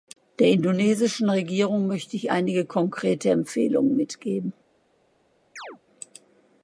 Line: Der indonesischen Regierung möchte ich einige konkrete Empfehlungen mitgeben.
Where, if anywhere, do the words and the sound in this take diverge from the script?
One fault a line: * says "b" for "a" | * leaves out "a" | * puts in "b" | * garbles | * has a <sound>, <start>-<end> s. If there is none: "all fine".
* has a chirp, 5.6-5.8 s